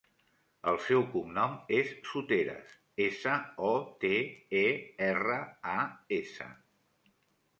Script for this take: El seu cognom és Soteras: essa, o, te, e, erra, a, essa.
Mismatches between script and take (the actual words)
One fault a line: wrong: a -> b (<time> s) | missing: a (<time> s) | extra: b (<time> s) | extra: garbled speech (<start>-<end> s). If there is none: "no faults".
no faults